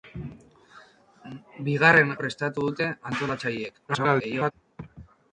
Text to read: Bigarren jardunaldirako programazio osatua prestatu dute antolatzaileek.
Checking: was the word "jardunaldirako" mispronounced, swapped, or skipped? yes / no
yes